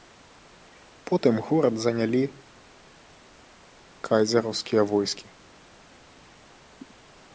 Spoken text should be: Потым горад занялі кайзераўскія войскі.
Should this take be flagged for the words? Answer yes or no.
no